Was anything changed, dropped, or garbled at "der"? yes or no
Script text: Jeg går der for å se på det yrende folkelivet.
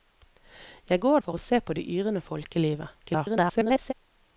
yes